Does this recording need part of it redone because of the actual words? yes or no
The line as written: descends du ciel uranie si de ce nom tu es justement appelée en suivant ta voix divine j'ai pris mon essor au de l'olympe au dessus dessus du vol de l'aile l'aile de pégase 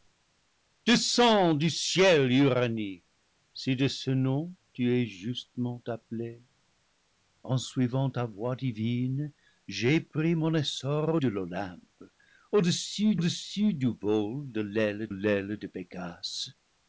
no